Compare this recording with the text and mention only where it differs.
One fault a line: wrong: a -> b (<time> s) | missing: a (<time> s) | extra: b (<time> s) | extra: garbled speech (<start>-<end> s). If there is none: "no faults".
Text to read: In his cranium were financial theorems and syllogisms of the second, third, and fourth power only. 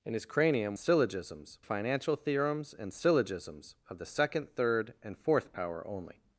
wrong: were -> syllogisms (0.8 s)